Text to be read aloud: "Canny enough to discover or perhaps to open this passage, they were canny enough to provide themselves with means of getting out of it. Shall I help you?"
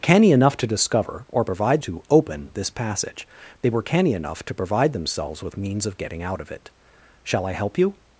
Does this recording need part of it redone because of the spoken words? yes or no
yes